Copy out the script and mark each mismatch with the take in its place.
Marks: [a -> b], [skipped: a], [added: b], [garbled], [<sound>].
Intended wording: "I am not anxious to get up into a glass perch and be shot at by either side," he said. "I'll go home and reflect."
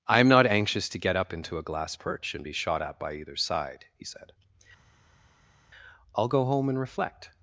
"I am not anxious to get up into a glass perch and be shot at by either side," he said. "I'll go home and reflect."